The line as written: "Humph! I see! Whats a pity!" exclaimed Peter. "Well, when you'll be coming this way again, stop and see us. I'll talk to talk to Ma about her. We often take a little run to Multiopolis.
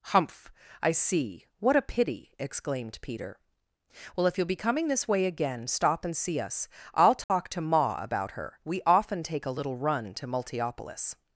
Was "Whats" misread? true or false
true